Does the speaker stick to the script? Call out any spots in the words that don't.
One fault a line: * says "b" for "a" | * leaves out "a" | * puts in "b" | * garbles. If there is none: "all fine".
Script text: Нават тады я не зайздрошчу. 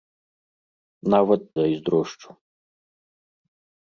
* leaves out "тады я не"